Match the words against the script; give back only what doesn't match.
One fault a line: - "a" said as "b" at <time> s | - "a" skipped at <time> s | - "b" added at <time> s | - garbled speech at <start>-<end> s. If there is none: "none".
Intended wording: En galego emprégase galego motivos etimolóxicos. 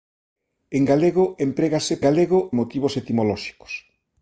none